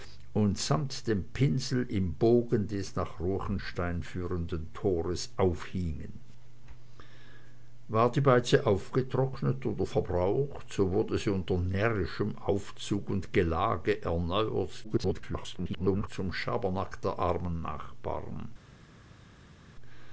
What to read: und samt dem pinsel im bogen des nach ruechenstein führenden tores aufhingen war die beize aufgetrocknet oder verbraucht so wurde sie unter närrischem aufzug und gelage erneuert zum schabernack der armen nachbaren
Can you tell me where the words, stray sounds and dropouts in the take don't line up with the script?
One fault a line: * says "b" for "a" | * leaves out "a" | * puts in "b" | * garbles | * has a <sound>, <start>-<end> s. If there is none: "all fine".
* garbles